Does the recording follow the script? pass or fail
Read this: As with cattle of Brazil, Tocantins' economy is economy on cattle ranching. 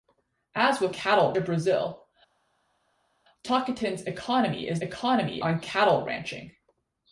pass